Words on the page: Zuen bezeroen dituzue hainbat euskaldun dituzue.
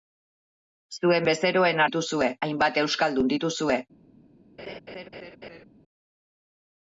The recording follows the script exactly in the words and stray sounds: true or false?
false